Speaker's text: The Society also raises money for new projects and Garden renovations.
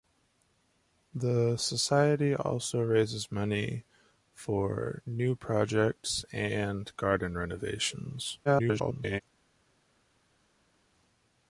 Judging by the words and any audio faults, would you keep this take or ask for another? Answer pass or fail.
fail